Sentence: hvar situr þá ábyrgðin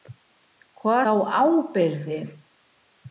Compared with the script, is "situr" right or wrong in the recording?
wrong